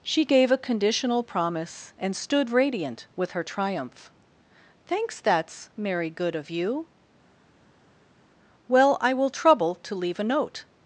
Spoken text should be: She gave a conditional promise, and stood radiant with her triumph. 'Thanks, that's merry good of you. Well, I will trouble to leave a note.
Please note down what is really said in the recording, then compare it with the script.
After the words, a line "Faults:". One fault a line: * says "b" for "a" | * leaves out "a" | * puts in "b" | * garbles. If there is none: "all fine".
She gave a conditional promise, and stood radiant with her triumph. 'Thanks, that's merry good of you. Well, I will trouble to leave a note.
Faults:
all fine